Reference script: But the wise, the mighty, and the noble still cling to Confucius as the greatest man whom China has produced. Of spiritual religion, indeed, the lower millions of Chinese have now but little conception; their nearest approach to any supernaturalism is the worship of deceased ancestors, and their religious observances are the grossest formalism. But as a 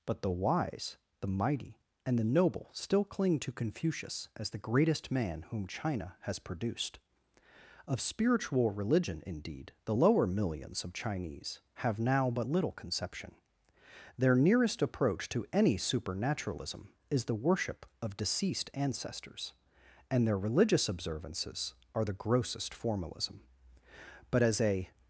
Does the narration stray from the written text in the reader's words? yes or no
no